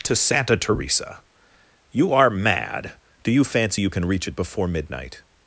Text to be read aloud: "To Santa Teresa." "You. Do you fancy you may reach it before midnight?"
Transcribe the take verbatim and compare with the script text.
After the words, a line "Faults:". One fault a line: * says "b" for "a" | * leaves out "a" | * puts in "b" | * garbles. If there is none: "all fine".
"To Santa Teresa." "You are mad. Do you fancy you can reach it before midnight?"
Faults:
* puts in "are mad"
* says "can" for "may"